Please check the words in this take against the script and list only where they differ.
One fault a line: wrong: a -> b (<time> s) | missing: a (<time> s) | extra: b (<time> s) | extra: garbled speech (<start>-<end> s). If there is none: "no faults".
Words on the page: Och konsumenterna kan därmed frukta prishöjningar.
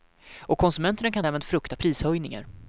no faults